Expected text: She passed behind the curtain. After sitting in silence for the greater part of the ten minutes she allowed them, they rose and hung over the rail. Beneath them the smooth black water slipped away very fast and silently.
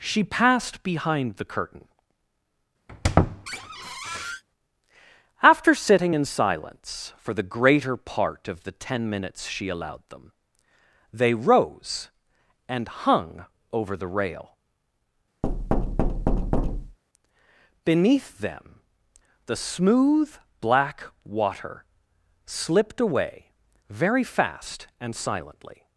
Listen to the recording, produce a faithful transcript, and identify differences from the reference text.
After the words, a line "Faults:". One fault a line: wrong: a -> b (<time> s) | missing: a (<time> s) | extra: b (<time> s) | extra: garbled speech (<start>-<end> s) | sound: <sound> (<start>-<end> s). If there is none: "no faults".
She passed behind the curtain. After sitting in silence for the greater part of the ten minutes she allowed them, they rose and hung over the rail. Beneath them the smooth black water slipped away very fast and silently.
Faults:
sound: squeak (2.9-4.4 s)
sound: thud (15.4-17.0 s)